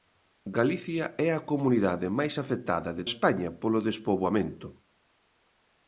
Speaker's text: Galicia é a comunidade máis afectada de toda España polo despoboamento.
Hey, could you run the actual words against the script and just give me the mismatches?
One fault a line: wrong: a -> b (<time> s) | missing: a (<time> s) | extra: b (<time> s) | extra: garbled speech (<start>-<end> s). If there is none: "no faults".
missing: toda (3.0 s)